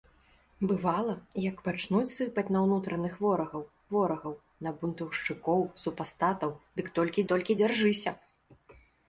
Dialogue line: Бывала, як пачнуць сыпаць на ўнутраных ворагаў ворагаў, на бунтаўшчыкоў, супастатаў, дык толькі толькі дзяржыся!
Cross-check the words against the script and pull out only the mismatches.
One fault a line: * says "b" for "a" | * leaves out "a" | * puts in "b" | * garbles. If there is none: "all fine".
all fine